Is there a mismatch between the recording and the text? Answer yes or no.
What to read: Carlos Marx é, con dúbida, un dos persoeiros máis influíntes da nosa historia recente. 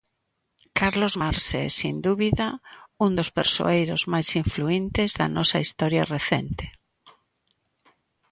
yes